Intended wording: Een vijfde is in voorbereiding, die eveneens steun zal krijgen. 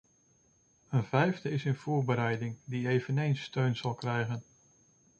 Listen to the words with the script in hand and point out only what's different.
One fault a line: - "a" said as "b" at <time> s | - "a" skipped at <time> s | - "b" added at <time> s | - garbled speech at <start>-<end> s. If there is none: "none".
none